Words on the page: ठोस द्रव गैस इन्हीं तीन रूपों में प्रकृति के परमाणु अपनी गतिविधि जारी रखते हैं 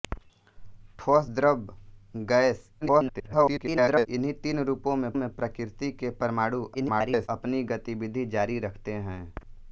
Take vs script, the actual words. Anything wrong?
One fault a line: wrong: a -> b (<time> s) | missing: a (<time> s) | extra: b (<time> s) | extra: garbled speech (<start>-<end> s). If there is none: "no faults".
extra: garbled speech (2.8-4.1 s)
extra: में (5.1 s)
extra: garbled speech (6.7-7.3 s)